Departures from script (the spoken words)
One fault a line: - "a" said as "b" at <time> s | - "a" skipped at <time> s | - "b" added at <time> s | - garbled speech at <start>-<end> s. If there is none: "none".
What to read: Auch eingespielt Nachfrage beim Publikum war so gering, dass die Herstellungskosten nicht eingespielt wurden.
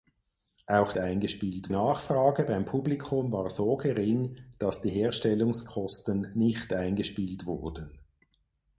none